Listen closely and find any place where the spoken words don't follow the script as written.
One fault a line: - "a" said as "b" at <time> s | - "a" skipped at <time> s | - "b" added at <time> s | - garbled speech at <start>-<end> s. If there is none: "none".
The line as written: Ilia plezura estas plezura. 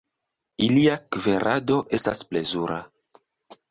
- "plezura" said as "kverado" at 1.1 s